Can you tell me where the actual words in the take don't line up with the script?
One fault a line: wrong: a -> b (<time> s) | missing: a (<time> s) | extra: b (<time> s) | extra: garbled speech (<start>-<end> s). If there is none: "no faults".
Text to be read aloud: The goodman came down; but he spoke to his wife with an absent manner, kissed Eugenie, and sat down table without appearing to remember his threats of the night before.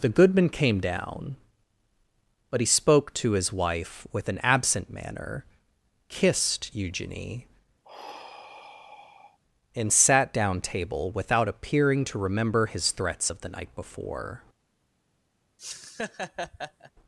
no faults